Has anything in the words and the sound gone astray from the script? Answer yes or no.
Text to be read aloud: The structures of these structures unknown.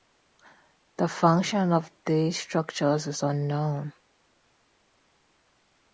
yes